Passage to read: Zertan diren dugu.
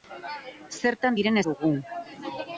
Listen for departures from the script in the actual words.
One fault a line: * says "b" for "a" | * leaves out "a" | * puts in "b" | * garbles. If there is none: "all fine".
all fine